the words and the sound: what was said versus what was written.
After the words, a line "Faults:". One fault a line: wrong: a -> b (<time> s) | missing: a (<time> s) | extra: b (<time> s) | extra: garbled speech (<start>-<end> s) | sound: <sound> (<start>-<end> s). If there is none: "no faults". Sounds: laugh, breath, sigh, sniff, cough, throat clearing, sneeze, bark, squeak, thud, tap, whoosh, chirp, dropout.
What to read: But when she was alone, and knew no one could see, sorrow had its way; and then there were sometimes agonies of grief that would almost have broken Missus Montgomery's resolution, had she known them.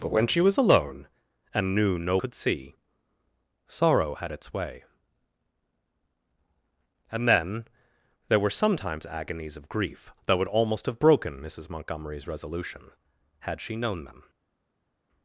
But when she was alone, and knew no could see, sorrow had its way; and then there were sometimes agonies of grief that would almost have broken Missus Montgomery's resolution, had she known them.
Faults:
missing: one (2.2 s)